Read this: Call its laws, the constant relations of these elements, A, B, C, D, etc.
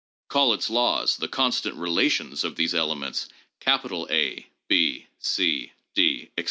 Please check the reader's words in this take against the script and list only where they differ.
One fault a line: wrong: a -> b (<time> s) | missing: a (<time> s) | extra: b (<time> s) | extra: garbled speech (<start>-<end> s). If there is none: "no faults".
no faults